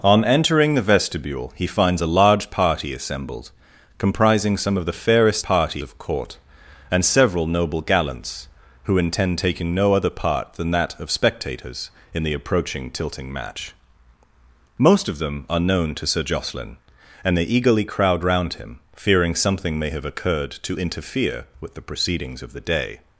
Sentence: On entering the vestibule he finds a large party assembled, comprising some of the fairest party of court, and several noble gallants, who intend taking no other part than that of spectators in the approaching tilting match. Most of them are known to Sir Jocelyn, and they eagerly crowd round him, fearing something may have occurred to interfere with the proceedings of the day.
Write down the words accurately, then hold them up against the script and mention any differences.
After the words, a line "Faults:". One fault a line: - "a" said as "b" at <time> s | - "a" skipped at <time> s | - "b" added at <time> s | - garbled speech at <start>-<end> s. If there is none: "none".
On entering the vestibule he finds a large party assembled, comprising some of the fairest party of court, and several noble gallants, who intend taking no other part than that of spectators in the approaching tilting match. Most of them are known to Sir Jocelyn, and they eagerly crowd round him, fearing something may have occurred to interfere with the proceedings of the day.
Faults:
none